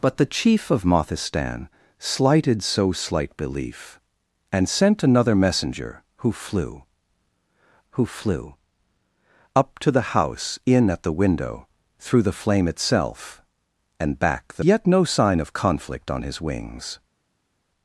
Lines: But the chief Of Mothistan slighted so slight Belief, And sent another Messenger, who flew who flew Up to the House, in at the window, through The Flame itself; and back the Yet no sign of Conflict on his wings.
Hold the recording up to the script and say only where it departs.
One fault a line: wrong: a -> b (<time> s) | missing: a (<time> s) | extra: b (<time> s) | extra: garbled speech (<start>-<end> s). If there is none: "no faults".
no faults